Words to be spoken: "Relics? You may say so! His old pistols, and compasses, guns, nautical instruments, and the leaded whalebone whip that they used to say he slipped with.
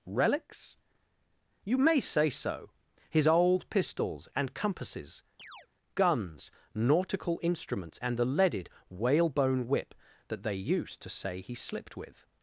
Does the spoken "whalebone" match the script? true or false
true